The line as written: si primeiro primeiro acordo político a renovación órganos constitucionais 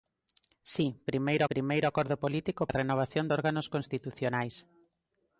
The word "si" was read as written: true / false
true